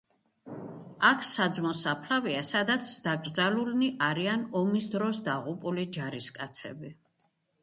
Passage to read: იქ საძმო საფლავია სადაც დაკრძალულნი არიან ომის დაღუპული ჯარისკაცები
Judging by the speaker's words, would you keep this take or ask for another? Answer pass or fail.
fail